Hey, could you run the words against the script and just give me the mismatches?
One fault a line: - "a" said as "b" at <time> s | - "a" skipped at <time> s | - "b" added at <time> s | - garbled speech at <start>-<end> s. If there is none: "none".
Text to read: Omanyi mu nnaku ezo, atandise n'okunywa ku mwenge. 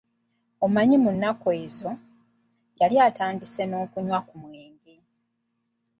- "yali" added at 2.8 s